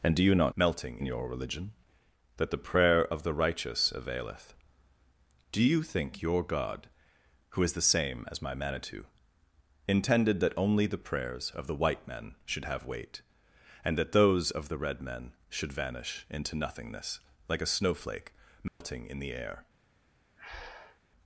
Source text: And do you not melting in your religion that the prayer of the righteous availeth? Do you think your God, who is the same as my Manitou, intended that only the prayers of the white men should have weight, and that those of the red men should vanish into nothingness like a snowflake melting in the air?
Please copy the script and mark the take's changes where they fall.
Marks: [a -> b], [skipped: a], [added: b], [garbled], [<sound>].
And do you not melting in your religion that the prayer of the righteous availeth? Do you think your God, who is the same as my Manitou, intended that only the prayers of the white men should have weight, and that those of the red men should vanish into nothingness like a snowflake melting [dropout] in the air? [breath]